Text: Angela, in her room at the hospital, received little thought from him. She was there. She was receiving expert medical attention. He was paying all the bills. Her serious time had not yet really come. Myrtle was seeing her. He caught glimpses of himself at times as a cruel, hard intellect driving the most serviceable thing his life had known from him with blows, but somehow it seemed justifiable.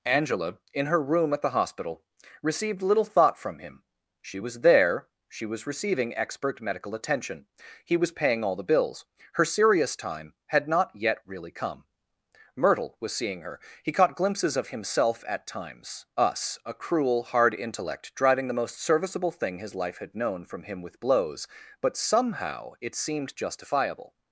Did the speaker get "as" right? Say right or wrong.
wrong